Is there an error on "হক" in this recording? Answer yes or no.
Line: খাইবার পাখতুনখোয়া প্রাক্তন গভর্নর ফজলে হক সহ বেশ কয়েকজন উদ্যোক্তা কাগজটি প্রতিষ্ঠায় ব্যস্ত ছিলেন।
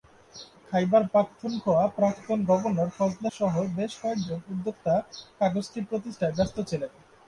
yes